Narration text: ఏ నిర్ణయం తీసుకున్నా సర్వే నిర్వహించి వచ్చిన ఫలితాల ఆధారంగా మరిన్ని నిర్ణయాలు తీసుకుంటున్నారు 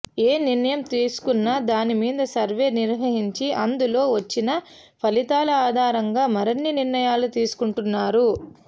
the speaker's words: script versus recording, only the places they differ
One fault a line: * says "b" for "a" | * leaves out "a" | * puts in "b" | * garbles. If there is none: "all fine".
* puts in "దాని మీద"
* puts in "అందులో"